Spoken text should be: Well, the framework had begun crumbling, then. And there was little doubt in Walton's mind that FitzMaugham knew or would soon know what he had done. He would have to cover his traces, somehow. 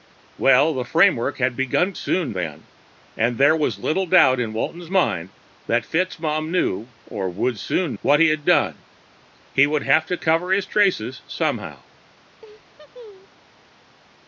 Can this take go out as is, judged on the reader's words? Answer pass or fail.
fail